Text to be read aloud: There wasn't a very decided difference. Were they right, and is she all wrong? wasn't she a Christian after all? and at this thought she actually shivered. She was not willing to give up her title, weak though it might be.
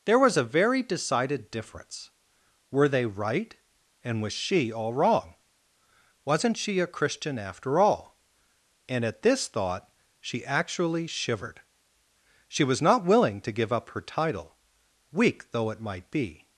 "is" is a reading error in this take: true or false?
true